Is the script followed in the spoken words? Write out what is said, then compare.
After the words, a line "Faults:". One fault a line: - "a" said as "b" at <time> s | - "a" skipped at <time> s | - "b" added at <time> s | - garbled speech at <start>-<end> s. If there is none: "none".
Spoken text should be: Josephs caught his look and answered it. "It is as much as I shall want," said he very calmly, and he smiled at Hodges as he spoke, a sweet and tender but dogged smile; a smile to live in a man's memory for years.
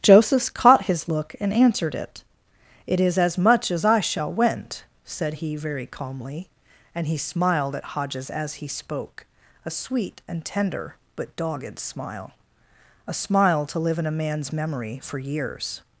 Josephs caught his look and answered it. "It is as much as I shall went," said he very calmly, and he smiled at Hodges as he spoke, a sweet and tender but dogged smile; a smile to live in a man's memory for years.
Faults:
- "want" said as "went" at 4.3 s